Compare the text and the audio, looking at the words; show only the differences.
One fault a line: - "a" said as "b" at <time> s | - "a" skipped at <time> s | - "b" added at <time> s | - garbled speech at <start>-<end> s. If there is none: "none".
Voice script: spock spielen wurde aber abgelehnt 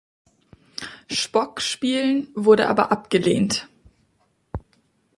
none